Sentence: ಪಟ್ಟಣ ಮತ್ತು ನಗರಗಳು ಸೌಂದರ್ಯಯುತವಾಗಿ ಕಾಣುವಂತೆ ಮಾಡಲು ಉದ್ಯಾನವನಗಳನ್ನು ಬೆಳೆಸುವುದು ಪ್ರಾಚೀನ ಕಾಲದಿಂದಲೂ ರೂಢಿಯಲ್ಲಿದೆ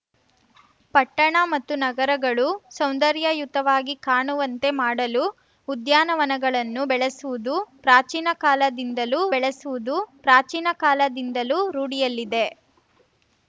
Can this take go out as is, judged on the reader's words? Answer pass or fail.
fail